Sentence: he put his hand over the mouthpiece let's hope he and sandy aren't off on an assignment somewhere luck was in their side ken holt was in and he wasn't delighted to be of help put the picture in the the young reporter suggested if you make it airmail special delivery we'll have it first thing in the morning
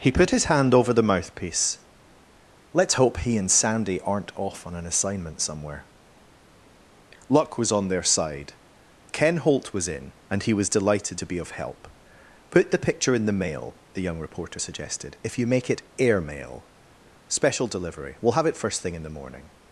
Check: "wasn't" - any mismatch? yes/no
yes